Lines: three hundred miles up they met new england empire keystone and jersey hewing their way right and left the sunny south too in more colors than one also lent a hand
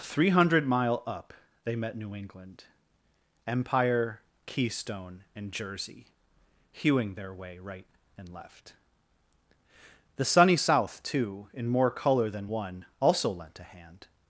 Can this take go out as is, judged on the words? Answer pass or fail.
fail